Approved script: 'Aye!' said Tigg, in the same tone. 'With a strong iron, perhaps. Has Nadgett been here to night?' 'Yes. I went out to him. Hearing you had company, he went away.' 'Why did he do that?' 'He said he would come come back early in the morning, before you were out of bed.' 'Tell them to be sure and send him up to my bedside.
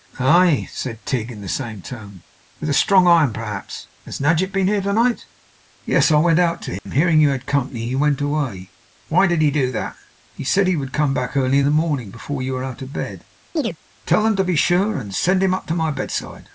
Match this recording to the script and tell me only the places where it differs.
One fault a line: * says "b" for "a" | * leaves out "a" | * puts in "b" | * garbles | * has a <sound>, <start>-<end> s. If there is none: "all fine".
* has a dropout, 6.8-6.9 s
* leaves out "come"
* has a chirp, 13.6-13.8 s